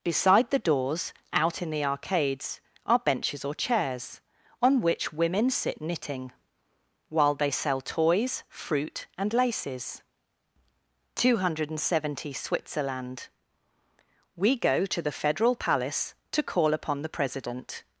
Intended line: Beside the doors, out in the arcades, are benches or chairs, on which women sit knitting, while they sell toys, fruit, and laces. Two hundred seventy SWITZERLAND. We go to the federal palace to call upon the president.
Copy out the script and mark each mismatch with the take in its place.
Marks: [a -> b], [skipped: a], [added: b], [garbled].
Beside the doors, out in the arcades, are benches or chairs, on which women sit knitting, while they sell toys, fruit, and laces. Two hundred seventy SWITZERLAND. We go to the federal palace to call upon the president.